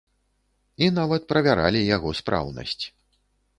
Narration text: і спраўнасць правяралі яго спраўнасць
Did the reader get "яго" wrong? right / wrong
right